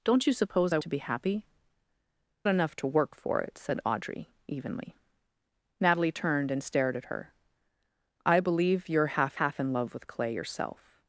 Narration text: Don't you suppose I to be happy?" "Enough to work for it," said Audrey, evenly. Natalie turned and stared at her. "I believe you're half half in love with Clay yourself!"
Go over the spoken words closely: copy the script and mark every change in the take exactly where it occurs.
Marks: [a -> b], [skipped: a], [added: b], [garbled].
Don't you suppose I to be happy?" "Enough to work for it," said Audrey, evenly. Natalie turned and stared at her. "I believe you're half half in love with Clay yourself!"